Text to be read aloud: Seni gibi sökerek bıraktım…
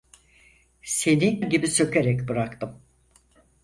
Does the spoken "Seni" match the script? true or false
true